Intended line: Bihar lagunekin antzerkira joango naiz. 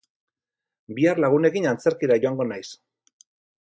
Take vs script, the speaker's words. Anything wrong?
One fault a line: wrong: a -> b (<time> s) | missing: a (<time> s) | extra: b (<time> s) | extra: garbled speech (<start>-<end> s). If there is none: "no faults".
no faults